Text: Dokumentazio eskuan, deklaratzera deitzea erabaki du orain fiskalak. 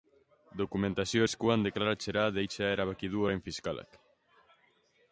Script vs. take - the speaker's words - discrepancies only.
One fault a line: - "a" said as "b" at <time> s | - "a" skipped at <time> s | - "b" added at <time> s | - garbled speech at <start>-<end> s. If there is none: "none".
none